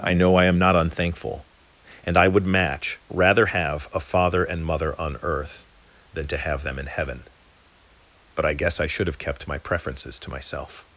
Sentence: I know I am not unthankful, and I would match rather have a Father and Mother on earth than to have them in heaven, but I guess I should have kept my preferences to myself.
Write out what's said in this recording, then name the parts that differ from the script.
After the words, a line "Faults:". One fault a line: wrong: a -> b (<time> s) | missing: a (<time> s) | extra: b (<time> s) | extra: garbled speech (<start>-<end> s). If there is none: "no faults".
I know I am not unthankful, and I would match rather have a Father and Mother on earth than to have them in heaven, but I guess I should have kept my preferences to myself.
Faults:
no faults